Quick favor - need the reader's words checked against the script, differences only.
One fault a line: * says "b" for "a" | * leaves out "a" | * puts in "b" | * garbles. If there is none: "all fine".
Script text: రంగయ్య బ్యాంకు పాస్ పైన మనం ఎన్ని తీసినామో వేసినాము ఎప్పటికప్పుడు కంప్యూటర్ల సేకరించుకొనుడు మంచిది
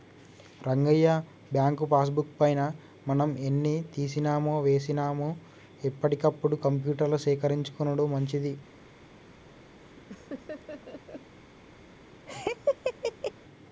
* puts in "బుక్"